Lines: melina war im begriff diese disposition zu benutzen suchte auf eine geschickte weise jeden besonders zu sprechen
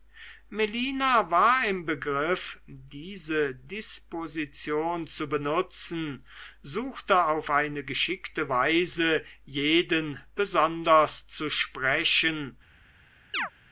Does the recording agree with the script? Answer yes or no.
yes